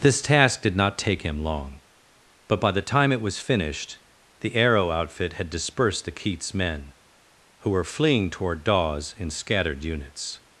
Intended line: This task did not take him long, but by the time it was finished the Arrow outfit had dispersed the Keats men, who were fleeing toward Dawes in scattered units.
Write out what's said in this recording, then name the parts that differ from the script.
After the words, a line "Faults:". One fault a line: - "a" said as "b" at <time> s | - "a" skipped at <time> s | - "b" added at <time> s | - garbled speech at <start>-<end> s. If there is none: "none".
This task did not take him long, but by the time it was finished the Arrow outfit had dispersed the Keats men, who were fleeing toward Dawes in scattered units.
Faults:
none